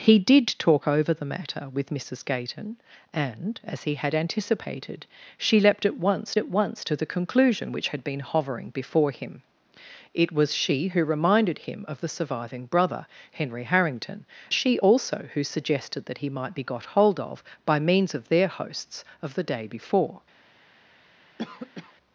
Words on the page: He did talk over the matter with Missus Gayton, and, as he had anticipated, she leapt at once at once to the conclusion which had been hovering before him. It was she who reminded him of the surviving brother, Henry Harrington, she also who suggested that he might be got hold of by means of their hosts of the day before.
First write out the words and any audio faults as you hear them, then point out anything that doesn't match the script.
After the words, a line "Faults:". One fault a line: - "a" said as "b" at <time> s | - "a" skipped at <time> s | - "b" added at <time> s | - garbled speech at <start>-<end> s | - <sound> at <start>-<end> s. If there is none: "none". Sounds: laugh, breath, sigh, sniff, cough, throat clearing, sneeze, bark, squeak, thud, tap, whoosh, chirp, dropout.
He did talk over the matter with Missus Gayton, and, as he had anticipated, she leapt at once at once to the conclusion which had been hovering before him. It was she who reminded him of the surviving brother, Henry Harrington, she also who suggested that he might be got hold of by means of their hosts of the day before.
Faults:
- cough at 21.4-21.9 s